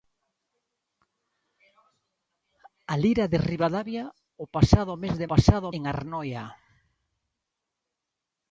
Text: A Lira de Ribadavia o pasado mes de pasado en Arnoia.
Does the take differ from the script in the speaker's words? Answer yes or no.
no